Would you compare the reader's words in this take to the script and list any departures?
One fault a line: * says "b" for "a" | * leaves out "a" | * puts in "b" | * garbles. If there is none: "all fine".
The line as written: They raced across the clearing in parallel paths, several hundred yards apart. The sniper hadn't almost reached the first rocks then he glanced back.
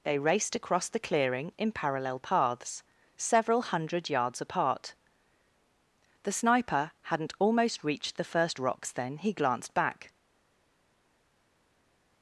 all fine